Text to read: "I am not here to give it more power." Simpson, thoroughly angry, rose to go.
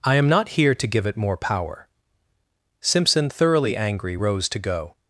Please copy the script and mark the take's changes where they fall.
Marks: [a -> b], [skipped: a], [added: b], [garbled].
"I am not here to give it more power." Simpson, thoroughly angry, rose to go.